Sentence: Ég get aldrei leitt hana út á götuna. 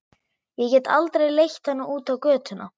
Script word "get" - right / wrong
right